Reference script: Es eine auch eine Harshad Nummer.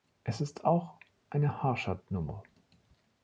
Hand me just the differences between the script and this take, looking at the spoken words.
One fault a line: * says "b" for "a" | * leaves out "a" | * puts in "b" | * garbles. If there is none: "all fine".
* says "ist" for "eine"